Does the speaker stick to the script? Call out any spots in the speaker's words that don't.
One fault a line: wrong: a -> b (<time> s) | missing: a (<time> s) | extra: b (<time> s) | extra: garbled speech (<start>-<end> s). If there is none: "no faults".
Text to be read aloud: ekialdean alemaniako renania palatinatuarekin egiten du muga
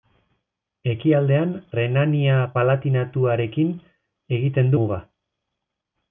missing: alemaniako (1.5 s)
missing: du (4.8 s)